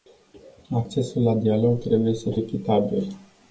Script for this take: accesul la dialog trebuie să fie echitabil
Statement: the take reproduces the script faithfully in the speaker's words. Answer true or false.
false